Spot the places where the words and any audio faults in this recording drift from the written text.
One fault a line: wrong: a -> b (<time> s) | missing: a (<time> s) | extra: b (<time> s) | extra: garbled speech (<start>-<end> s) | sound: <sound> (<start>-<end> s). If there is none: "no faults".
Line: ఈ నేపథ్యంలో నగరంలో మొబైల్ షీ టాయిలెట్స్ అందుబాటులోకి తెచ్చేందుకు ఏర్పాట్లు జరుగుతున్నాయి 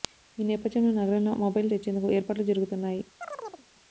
missing: షీ టాయిలెట్స్ అందుబాటులోకి (1.7 s)
sound: chirp (3.2-3.7 s)